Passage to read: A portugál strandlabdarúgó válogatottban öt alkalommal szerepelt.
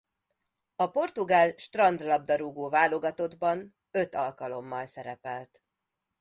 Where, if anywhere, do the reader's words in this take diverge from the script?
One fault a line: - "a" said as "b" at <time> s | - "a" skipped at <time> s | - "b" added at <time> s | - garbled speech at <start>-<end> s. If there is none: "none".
none